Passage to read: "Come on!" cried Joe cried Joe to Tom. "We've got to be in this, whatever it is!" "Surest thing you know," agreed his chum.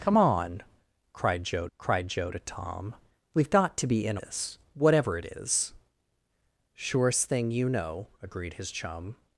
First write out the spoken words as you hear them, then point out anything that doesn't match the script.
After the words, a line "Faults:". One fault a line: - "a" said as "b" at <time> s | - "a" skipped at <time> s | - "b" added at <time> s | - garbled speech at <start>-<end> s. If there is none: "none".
"Come on!" cried Joe cried Joe to Tom. "We've got to be in this, whatever it is!" "Surest thing you know," agreed his chum.
Faults:
none